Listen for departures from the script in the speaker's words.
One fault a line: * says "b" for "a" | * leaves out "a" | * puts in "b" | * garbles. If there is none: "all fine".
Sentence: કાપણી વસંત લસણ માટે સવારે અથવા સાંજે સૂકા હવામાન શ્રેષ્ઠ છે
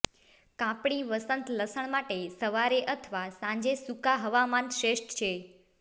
all fine